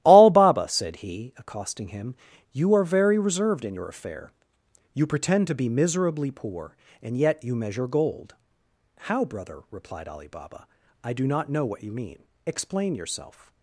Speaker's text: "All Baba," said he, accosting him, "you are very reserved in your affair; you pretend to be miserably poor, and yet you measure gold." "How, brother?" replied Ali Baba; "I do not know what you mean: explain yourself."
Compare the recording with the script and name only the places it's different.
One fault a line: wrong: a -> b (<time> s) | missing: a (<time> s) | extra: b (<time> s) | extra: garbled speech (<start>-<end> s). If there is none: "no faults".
no faults